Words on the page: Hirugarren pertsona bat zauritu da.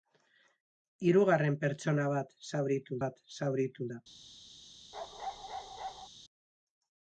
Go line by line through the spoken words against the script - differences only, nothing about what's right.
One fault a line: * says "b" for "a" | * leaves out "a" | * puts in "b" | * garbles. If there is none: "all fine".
* puts in "bat zauritu"